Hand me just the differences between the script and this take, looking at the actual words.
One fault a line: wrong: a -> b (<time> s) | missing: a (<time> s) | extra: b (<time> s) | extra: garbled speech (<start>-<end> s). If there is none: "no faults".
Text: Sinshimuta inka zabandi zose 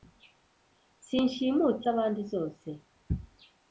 missing: inka (1.8 s)